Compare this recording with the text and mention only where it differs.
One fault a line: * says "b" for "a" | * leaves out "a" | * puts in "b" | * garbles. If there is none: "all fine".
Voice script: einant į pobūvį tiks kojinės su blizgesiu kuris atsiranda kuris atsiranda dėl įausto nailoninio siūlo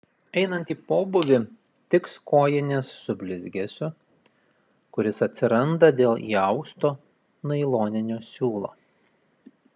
* leaves out "kuris atsiranda"